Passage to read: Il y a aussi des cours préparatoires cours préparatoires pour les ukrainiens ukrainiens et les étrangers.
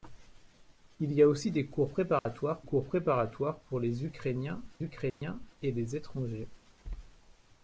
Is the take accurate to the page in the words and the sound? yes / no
no